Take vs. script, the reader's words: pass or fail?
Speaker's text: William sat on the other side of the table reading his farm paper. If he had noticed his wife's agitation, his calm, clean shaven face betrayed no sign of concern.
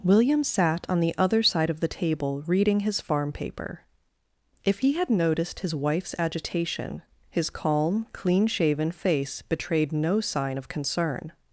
pass